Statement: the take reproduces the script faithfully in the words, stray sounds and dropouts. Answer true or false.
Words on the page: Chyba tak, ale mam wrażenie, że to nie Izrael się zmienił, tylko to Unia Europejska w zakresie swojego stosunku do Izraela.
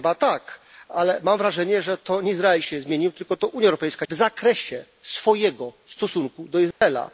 false